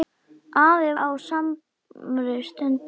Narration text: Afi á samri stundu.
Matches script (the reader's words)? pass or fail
pass